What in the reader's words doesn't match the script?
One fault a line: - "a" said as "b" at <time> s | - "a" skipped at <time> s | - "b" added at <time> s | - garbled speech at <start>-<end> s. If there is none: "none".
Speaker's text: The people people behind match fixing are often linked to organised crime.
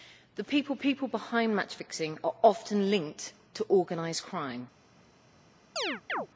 none